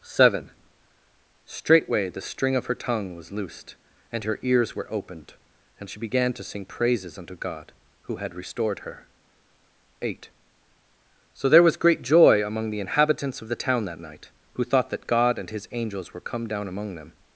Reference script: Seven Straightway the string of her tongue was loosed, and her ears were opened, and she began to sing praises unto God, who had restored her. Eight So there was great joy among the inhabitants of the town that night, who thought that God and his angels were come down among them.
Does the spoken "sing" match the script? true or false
true